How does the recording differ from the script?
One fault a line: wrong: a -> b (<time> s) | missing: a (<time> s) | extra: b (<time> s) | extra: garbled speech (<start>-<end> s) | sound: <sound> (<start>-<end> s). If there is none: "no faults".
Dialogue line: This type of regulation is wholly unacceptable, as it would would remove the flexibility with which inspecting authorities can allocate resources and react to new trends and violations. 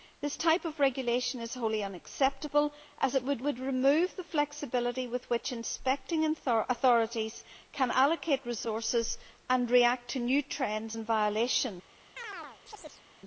sound: chirp (12.2-13.0 s)